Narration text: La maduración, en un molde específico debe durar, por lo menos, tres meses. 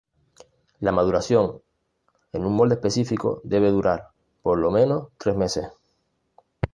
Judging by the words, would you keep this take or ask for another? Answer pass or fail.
pass